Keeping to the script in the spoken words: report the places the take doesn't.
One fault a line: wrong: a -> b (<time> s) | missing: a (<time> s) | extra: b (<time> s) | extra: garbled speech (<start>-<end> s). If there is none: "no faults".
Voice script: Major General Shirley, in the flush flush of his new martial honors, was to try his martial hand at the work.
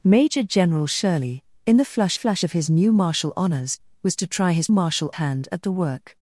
no faults